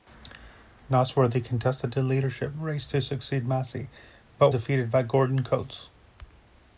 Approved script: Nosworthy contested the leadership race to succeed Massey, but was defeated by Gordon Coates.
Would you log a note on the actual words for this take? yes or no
yes